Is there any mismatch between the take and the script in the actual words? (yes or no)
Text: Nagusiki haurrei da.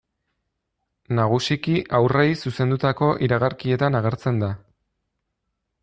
yes